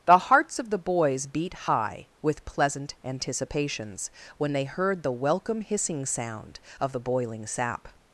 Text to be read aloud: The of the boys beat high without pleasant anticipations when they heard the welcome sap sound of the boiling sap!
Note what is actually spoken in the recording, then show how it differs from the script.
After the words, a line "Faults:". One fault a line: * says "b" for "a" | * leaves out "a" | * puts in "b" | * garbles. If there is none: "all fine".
The hearts of the boys beat high with pleasant anticipations when they heard the welcome hissing sound of the boiling sap!
Faults:
* puts in "hearts"
* says "with" for "without"
* says "hissing" for "sap"